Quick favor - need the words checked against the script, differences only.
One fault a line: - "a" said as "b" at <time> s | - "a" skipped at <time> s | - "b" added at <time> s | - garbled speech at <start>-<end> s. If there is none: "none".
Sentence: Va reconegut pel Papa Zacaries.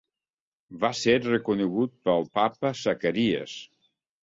- "ser" added at 1.0 s